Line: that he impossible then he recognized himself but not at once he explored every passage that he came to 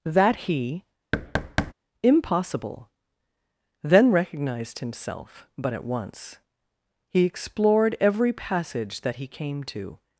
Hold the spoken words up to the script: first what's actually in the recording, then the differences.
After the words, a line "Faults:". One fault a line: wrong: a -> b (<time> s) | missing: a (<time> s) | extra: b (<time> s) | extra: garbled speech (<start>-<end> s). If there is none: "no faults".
that he impossible then recognized himself but at once he explored every passage that he came to
Faults:
missing: he (4.1 s)
missing: not (5.7 s)